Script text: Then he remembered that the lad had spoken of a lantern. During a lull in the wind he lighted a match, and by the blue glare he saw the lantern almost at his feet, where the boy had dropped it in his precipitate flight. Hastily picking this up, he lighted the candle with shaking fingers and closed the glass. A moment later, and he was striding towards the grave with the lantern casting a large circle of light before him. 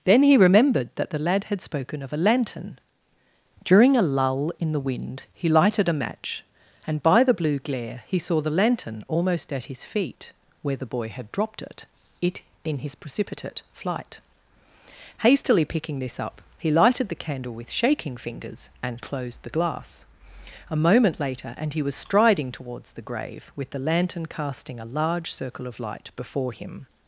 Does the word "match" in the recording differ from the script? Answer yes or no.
no